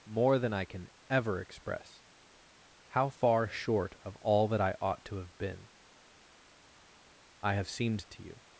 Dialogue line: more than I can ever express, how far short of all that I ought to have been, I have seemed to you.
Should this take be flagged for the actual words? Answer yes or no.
no